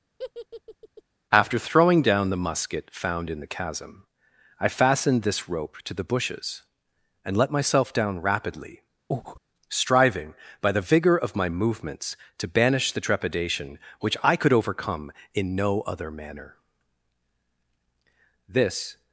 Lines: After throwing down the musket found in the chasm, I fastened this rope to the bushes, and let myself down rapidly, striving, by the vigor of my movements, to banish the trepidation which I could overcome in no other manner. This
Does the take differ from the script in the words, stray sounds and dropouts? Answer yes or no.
yes